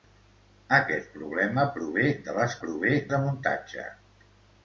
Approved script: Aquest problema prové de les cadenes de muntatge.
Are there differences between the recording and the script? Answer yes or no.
yes